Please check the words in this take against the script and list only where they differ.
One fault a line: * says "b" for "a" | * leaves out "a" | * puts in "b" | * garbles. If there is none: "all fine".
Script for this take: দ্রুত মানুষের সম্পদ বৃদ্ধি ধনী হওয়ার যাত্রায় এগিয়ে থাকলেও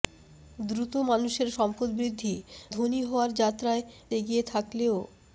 all fine